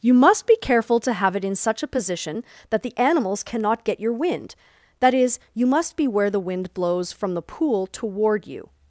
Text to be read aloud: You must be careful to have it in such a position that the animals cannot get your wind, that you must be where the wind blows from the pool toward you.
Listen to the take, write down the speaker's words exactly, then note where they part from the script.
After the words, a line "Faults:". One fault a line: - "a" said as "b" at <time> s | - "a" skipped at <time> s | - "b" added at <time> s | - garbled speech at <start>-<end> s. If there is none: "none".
You must be careful to have it in such a position that the animals cannot get your wind, that is, you must be where the wind blows from the pool toward you.
Faults:
- "is" added at 5.1 s